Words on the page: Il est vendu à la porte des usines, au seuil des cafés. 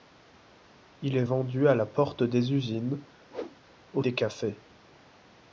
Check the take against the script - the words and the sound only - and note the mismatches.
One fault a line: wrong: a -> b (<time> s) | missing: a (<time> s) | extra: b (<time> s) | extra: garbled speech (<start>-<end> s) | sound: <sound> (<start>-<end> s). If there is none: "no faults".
sound: whoosh (3.3-3.6 s)
missing: seuil (4.0 s)